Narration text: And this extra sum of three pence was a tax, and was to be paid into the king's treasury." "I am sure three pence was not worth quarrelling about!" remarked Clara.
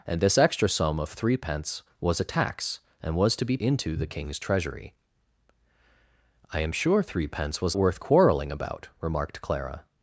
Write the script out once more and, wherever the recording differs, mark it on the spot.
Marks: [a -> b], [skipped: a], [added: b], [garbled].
And this extra sum of three pence was a tax, and was to be [skipped: paid] into the king's treasury." "I am sure three pence was [skipped: not] worth quarrelling about!" remarked Clara.